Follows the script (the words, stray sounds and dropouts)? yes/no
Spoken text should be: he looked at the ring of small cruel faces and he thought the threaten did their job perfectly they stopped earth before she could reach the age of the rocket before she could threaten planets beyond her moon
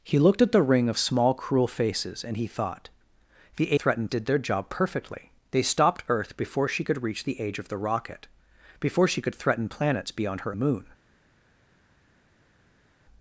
yes